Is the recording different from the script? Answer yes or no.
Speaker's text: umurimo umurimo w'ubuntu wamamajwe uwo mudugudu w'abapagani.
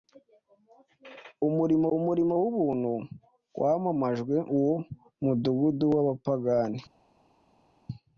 no